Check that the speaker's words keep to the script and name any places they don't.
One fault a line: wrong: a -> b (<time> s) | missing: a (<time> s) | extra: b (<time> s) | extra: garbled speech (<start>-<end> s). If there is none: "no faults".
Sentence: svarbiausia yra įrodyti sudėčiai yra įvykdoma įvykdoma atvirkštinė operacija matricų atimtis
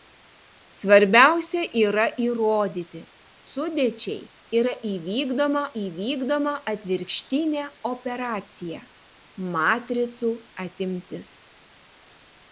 no faults